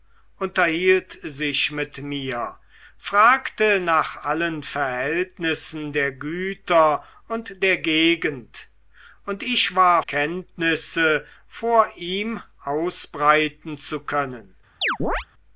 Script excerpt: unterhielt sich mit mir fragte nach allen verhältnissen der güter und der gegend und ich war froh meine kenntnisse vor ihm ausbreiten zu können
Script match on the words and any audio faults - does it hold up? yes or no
no